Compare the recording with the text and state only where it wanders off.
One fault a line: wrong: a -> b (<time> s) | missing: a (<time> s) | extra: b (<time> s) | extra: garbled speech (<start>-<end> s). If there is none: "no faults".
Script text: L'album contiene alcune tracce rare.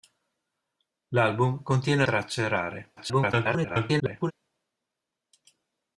missing: alcune (2.0 s)
extra: garbled speech (3.0-4.3 s)